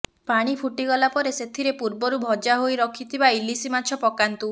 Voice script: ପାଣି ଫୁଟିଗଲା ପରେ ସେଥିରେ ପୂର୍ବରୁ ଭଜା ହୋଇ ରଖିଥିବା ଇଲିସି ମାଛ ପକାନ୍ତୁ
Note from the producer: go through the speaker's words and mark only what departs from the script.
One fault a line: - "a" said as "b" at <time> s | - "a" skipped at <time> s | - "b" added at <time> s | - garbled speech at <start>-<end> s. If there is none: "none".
none